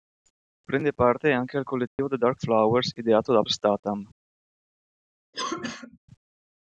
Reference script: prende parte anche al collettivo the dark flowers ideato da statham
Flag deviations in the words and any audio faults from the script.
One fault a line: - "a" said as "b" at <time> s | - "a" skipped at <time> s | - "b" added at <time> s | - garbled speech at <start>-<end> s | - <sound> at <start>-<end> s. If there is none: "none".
- dropout at 1.9-2.0 s
- cough at 5.3-6.0 s